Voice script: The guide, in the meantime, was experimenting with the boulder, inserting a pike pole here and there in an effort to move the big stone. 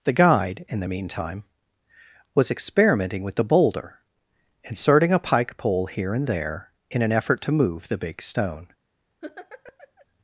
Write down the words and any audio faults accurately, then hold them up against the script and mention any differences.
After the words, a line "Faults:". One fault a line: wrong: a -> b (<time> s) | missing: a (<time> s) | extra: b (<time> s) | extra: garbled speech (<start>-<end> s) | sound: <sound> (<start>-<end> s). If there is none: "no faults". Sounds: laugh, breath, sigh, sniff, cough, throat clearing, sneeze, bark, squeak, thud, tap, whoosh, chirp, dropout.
The guide, in the meantime, was experimenting with the boulder, inserting a pike pole here and there in an effort to move the big stone.
Faults:
sound: laugh (9.2-10.1 s)